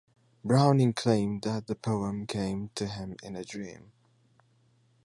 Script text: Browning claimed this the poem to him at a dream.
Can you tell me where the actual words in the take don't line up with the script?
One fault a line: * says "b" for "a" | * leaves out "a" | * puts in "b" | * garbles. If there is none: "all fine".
* says "that" for "this"
* puts in "came"
* says "in" for "at"